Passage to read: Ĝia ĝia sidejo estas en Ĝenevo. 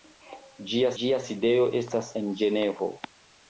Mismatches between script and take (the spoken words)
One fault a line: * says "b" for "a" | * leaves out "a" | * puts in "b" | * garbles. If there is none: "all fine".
all fine